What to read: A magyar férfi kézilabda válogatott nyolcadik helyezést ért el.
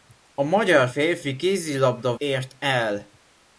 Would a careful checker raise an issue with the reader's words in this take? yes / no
yes